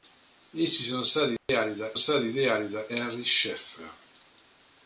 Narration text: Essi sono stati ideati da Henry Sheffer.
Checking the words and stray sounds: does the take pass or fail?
fail